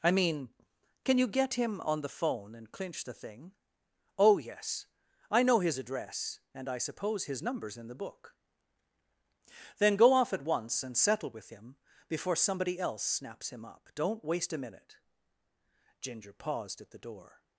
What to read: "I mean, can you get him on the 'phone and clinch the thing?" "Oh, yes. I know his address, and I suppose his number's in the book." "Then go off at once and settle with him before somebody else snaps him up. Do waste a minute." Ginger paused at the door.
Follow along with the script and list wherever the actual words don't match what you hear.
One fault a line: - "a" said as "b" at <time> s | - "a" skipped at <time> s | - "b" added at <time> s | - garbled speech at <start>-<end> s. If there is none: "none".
- "Do" said as "Don't" at 13.9 s